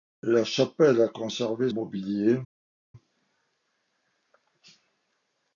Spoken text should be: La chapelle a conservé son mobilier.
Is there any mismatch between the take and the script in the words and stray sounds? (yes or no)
yes